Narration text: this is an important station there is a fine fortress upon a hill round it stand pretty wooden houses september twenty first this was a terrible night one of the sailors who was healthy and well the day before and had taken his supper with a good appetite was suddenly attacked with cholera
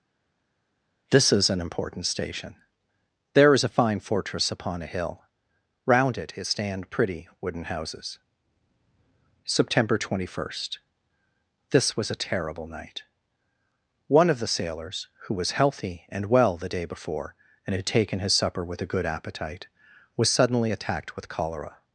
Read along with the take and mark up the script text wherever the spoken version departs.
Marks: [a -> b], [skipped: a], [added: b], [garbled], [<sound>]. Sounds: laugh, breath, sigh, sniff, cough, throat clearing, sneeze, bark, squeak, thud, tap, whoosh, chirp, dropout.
this is an important station there is a fine fortress upon a hill round it [added: it] stand pretty wooden houses september twenty first this was a terrible night one of the sailors who was healthy and well the day before and had taken his supper with a good appetite was suddenly attacked with cholera